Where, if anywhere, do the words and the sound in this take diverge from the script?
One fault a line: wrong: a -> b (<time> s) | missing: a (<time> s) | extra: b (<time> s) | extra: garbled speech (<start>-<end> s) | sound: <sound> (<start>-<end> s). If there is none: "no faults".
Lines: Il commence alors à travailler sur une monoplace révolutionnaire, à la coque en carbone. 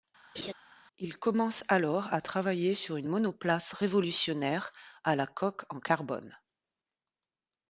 sound: laugh (0.3-0.5 s)